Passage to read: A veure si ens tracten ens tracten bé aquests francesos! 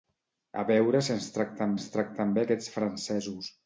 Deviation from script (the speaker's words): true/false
false